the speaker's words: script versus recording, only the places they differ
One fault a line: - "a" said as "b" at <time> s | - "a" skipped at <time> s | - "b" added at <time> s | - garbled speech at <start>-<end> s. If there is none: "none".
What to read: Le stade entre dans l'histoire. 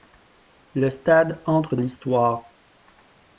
- "dans" skipped at 1.8 s